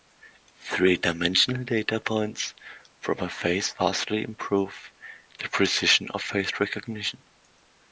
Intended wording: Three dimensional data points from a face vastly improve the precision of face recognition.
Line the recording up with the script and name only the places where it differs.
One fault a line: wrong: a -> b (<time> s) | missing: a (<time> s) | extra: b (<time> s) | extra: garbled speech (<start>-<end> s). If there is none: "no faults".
no faults